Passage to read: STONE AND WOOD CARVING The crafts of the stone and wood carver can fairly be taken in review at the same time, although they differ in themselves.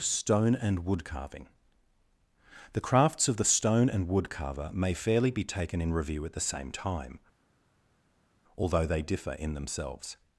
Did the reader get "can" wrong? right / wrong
wrong